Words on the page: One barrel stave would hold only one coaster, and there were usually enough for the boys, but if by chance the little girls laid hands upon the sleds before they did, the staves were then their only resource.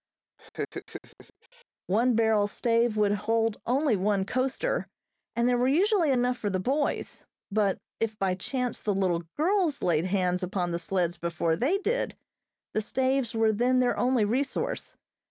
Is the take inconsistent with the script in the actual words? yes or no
no